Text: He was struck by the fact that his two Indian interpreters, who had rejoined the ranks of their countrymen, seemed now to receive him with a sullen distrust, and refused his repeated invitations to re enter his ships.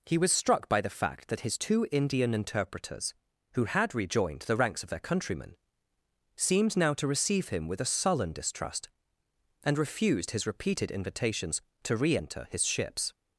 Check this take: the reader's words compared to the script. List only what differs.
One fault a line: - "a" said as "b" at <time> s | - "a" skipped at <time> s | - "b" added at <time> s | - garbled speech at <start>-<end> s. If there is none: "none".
none